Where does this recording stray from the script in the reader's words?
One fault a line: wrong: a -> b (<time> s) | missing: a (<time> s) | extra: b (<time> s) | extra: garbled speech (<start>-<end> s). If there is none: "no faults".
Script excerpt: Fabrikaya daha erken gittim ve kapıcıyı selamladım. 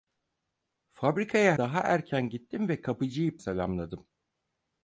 no faults